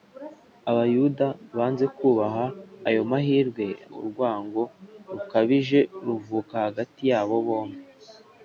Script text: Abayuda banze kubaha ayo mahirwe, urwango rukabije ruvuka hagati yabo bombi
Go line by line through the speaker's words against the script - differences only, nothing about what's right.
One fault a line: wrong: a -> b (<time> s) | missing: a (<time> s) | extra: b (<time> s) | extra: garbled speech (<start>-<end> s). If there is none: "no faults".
no faults